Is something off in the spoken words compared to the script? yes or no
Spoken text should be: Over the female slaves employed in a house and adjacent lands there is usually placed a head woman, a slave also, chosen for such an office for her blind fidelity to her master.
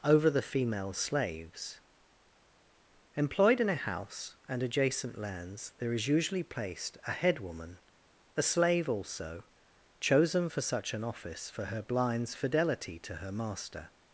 yes